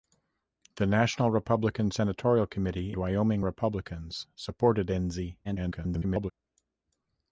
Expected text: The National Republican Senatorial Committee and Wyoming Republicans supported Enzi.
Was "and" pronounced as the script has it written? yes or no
no